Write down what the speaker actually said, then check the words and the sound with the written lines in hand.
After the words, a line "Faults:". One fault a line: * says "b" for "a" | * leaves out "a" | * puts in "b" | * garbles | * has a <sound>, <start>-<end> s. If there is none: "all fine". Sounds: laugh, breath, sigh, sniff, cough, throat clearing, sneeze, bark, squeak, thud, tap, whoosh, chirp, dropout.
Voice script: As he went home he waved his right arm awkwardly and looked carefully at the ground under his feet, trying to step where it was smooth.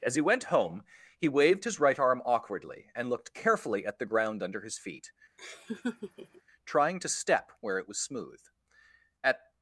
As he went home he waved his right arm awkwardly and looked carefully at the ground under his feet, trying to step where it was smooth. At
Faults:
* has a laugh, 5.4-6.4 s
* puts in "At"